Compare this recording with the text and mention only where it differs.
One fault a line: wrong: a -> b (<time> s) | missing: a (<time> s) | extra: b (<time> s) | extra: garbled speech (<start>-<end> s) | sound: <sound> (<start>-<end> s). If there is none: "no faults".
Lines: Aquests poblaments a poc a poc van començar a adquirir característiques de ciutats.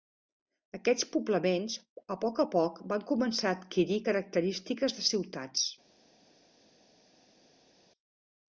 no faults